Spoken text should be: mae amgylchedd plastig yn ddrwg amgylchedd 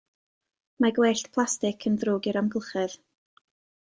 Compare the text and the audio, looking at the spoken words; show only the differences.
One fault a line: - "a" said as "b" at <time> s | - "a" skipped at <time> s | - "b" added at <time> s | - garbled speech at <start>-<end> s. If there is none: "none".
- "amgylchedd" said as "gwellt" at 0.9 s
- "i'r" added at 2.3 s